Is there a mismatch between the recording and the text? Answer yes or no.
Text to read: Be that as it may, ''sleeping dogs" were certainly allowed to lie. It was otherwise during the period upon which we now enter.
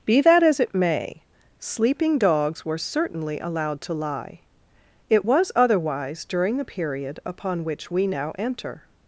no